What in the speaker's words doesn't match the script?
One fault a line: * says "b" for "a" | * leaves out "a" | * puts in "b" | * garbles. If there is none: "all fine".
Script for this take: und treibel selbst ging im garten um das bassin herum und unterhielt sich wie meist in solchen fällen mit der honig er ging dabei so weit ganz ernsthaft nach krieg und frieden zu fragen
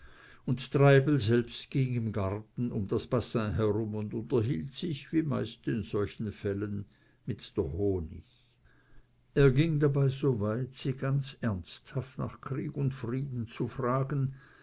* puts in "sie"